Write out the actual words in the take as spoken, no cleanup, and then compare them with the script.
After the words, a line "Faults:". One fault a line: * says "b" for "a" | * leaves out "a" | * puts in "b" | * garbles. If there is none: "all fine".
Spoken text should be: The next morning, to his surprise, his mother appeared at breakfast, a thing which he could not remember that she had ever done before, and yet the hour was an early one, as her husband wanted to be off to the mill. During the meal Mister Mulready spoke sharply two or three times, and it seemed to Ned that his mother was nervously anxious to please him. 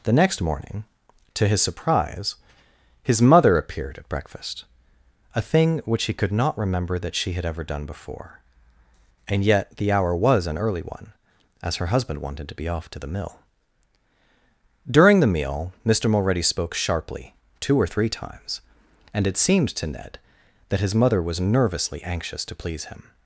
The next morning, to his surprise, his mother appeared at breakfast, a thing which he could not remember that she had ever done before, and yet the hour was an early one, as her husband wanted to be off to the mill. During the meal Mister Mulready spoke sharply two or three times, and it seemed to Ned that his mother was nervously anxious to please him.
Faults:
all fine